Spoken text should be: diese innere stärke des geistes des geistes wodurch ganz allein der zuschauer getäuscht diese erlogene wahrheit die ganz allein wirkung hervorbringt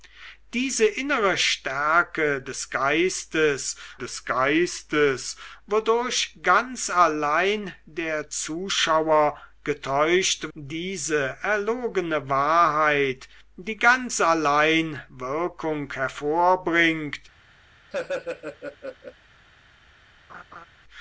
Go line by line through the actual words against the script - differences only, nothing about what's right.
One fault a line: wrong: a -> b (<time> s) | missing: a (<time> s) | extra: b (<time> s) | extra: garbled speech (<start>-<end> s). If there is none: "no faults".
no faults